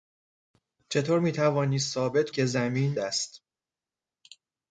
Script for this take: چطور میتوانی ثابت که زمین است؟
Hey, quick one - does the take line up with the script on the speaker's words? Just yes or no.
yes